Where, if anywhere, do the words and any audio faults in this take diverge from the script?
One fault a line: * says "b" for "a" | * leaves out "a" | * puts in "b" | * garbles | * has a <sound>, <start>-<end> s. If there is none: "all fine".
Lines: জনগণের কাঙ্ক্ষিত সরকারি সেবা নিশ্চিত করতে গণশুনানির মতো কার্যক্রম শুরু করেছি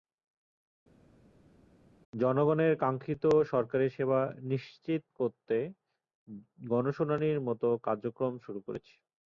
all fine